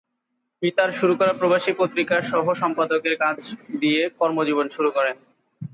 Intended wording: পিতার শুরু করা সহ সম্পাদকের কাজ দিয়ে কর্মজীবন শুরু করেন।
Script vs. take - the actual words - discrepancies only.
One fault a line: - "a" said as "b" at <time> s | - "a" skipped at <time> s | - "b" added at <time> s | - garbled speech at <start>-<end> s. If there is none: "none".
- "প্রবাসী পত্রিকার" added at 1.3 s